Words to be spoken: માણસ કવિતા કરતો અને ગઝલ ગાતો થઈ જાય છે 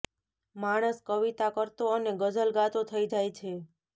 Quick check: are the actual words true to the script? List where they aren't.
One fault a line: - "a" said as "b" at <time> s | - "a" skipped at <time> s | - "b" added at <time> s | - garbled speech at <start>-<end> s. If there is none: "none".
none